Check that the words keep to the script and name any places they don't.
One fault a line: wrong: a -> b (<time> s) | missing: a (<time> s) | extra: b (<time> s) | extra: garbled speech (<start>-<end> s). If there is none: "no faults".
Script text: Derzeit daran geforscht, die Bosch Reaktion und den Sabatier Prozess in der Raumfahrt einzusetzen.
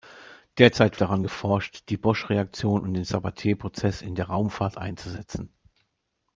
no faults